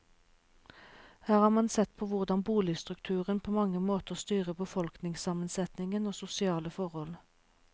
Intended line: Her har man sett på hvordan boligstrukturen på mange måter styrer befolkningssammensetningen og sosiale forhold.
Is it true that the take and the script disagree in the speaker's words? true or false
false